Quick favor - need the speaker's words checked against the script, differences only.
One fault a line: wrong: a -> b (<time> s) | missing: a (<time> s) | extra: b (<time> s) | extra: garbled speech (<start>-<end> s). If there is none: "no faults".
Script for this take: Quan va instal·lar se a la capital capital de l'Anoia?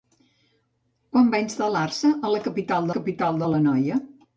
no faults